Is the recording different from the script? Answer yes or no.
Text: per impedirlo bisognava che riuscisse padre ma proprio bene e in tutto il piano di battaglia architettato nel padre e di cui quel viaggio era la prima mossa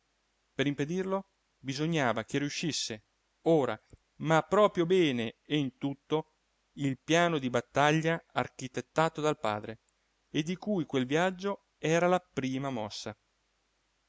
yes